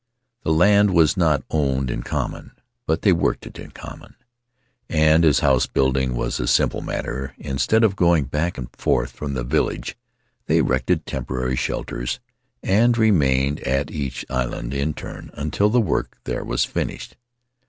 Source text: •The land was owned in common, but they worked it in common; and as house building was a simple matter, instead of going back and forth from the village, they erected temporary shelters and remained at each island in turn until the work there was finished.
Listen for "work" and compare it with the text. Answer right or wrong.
right